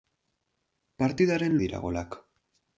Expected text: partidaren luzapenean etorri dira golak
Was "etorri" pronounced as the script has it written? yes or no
no